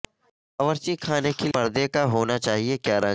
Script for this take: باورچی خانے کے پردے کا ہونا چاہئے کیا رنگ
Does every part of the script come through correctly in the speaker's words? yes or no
yes